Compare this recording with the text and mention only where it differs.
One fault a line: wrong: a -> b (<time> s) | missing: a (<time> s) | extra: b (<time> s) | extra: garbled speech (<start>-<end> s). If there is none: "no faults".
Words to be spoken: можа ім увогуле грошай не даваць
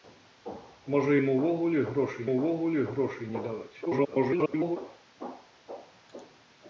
extra: увогуле грошай (2.3 s)
extra: garbled speech (3.9-4.8 s)